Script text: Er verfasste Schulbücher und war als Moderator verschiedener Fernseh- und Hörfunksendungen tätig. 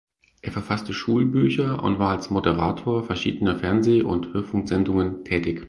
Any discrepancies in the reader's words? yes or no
no